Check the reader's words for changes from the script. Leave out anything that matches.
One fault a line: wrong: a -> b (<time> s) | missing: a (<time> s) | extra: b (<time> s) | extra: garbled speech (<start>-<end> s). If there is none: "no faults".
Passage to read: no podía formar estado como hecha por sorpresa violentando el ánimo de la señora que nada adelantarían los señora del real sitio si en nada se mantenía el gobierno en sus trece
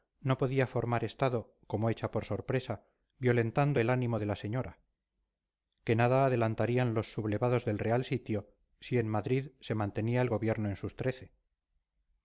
wrong: señora -> sublevados (7.1 s)
wrong: nada -> madrid (9.1 s)